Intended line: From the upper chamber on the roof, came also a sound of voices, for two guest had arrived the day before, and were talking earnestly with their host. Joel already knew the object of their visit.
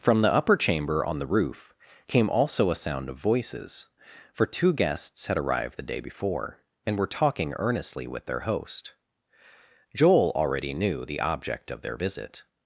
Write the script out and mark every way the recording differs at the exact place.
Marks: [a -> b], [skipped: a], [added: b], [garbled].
From the upper chamber on the roof, came also a sound of voices, for two [guest -> guests] had arrived the day before, and were talking earnestly with their host. Joel already knew the object of their visit.